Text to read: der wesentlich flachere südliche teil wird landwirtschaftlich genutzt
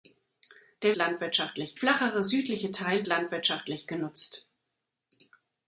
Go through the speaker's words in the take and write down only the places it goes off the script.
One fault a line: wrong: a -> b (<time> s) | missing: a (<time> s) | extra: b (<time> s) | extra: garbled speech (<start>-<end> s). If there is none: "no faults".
wrong: wesentlich -> landwirtschaftlich (1.0 s)
missing: wird (3.0 s)